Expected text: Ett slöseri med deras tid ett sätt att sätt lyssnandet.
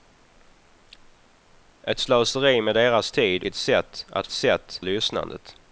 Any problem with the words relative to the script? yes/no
no